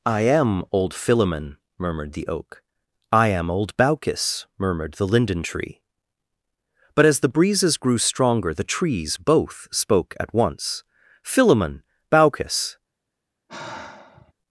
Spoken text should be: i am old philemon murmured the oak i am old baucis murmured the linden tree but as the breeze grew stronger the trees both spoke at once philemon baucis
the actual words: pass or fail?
fail